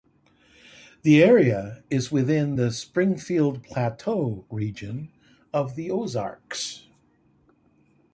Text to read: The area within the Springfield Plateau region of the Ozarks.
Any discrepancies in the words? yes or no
yes